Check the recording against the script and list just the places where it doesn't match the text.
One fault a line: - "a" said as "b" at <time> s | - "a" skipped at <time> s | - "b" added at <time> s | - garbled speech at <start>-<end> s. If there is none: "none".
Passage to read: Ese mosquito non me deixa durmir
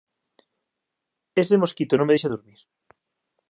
none